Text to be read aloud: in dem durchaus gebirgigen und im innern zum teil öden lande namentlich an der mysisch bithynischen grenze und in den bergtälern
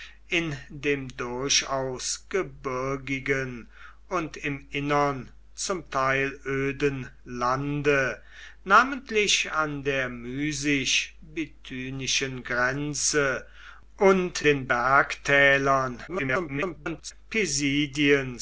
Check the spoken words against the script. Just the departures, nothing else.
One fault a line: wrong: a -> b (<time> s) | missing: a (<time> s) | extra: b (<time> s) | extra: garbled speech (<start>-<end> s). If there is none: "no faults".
missing: in (14.4 s)
extra: garbled speech (16.1-17.1 s)